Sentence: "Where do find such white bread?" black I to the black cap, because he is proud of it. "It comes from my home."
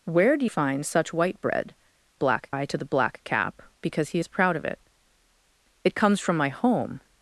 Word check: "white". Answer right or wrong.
right